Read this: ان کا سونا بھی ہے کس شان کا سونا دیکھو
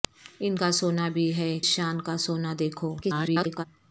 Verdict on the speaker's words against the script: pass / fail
fail